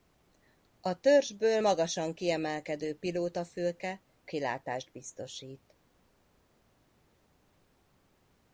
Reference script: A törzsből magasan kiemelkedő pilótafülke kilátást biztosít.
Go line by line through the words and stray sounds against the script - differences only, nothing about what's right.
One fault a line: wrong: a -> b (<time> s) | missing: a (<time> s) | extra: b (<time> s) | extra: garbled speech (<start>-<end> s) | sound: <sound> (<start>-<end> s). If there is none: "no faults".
no faults